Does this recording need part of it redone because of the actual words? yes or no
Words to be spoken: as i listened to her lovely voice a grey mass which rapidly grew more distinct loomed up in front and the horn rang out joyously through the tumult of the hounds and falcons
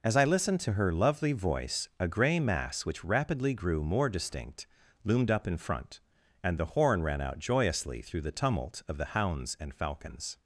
yes